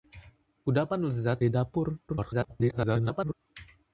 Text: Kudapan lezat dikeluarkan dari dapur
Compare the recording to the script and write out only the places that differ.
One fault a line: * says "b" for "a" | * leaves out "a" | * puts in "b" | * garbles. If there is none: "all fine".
* leaves out "dikeluarkan"
* garbles